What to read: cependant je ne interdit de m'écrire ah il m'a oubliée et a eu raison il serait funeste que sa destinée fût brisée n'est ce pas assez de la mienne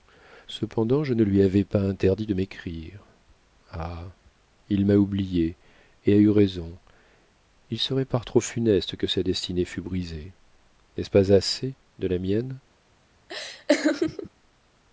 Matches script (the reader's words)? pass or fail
fail